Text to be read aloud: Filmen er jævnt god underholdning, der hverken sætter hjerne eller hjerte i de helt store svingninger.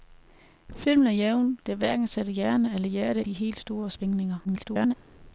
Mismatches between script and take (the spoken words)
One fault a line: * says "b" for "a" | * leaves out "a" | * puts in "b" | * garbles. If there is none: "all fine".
* leaves out "god underholdning"
* leaves out "i"
* garbles